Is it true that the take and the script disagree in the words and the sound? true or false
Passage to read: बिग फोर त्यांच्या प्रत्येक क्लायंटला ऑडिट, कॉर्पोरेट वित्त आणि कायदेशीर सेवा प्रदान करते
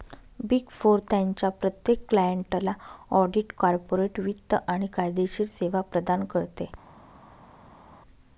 false